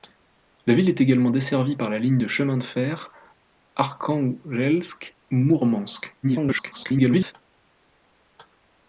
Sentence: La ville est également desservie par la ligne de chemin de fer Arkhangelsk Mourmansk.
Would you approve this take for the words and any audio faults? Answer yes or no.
no